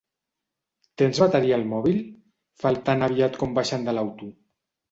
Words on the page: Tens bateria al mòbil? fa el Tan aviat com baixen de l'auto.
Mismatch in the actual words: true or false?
false